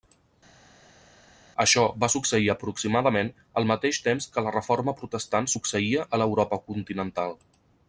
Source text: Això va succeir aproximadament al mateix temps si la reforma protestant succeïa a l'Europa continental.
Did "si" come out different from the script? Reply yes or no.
yes